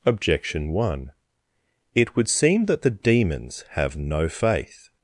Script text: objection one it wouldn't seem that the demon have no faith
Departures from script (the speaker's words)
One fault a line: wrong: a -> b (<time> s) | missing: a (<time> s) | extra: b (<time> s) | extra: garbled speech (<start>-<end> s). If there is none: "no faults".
wrong: wouldn't -> would (2.1 s)
wrong: demon -> demons (2.9 s)